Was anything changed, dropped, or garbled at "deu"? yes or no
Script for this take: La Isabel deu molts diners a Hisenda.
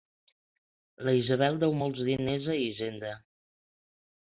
no